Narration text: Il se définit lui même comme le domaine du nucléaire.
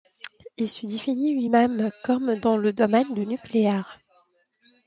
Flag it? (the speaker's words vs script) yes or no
yes